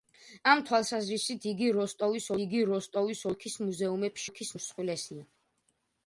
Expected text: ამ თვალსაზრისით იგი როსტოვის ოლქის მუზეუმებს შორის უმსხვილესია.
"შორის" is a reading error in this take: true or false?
true